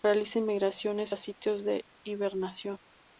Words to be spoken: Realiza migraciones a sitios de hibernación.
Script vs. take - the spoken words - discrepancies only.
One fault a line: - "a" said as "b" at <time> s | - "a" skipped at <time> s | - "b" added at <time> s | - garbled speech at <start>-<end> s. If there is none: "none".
none